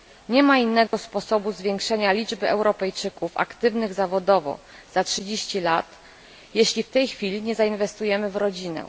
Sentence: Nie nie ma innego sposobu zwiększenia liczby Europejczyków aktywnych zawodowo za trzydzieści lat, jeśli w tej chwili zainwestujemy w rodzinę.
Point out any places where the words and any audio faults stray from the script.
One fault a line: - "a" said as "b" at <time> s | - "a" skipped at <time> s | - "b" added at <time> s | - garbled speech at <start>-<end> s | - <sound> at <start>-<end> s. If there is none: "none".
- "nie" skipped at 0.4 s
- dropout at 0.9-0.9 s
- "nie" added at 7.4 s